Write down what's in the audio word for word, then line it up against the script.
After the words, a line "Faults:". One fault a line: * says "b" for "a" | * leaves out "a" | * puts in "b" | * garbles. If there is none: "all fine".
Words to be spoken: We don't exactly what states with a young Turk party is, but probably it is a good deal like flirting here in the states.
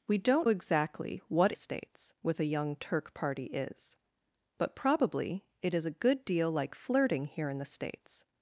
We don't exactly what states with a young Turk party is, but probably it is a good deal like flirting here in the states.
Faults:
all fine